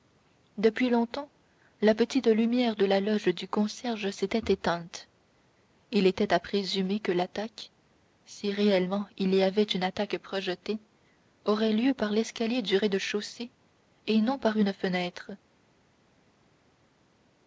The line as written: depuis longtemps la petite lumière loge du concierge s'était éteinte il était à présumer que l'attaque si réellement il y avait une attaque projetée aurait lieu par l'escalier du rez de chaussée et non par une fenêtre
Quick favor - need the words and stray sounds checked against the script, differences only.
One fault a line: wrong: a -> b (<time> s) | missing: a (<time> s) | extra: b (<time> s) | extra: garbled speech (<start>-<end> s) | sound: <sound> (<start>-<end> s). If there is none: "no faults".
extra: de la (2.8 s)